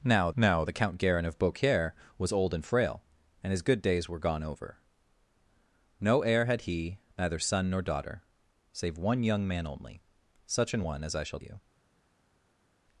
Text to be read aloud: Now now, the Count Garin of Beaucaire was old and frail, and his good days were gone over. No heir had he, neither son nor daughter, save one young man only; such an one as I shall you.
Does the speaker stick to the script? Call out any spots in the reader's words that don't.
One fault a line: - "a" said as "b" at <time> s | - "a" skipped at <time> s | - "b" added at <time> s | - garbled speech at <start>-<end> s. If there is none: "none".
none